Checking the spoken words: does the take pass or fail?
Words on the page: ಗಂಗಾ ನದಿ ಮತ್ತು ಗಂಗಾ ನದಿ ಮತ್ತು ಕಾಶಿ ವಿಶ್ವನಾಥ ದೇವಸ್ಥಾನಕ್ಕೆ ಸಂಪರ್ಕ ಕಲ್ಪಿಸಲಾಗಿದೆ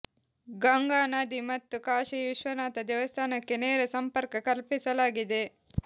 fail